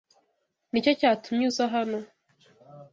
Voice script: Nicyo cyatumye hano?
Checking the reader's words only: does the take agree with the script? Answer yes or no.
no